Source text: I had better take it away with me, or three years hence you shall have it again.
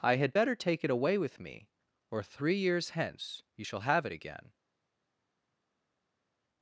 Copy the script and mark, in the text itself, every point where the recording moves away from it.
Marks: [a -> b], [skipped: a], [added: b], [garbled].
I had better take it away with me, or three years hence you shall have it again.